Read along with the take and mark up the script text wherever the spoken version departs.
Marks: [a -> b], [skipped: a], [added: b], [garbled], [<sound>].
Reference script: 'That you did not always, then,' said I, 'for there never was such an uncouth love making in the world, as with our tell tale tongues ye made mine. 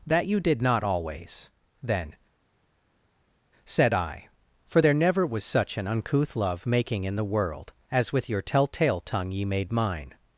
'That you did not always, then,' said I, 'for there never was such an uncouth love making in the world, as with [our -> your] tell tale [tongues -> tongue] ye made mine.